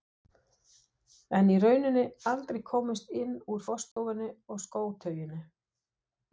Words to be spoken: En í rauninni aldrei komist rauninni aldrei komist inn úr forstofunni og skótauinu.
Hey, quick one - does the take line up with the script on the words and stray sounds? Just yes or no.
no